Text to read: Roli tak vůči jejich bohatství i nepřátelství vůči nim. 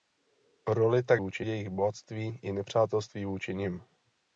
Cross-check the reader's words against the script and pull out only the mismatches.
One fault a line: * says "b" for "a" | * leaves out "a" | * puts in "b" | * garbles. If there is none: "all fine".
all fine